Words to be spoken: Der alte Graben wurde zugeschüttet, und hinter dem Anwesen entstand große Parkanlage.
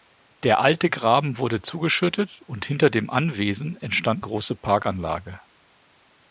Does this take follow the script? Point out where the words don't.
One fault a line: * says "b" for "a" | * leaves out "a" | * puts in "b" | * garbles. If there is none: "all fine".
all fine